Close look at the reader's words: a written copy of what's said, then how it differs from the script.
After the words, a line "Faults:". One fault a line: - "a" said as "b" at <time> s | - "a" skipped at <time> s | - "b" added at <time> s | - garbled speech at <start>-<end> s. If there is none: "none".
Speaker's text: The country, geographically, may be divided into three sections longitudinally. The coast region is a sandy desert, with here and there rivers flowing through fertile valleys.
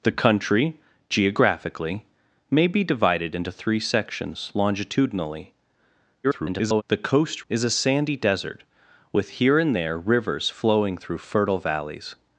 The country, geographically, may be divided into three sections longitudinally. [garbled] The coast is a sandy desert, with here and there rivers flowing through fertile valleys.
Faults:
- garbled speech at 6.2-6.8 s
- "region" skipped at 7.5 s